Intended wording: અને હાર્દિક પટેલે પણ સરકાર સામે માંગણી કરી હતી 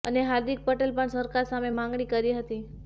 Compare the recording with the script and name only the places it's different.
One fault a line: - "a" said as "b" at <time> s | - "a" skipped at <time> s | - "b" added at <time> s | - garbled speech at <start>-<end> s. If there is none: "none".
none